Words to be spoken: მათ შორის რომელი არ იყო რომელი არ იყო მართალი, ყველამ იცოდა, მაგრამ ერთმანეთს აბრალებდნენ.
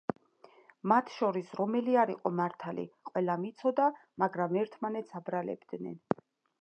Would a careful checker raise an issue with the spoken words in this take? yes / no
yes